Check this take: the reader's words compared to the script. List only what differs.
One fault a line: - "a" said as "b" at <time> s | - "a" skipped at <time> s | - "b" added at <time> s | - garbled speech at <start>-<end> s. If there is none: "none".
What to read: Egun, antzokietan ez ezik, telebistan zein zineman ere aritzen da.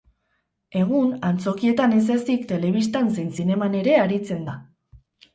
none